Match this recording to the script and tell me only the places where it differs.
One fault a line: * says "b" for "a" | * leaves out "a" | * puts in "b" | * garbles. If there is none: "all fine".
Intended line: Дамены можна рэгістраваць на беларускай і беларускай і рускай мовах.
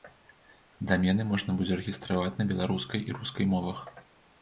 * puts in "будзе"
* leaves out "беларускай і"